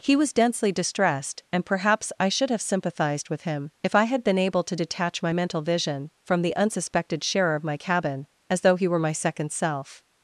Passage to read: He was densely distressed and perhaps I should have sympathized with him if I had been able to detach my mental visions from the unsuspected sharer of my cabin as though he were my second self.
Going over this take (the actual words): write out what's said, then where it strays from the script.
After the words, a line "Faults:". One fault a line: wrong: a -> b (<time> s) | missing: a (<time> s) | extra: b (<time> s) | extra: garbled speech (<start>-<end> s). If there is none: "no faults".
He was densely distressed and perhaps I should have sympathized with him if I had been able to detach my mental vision from the unsuspected sharer of my cabin as though he were my second self.
Faults:
wrong: visions -> vision (5.6 s)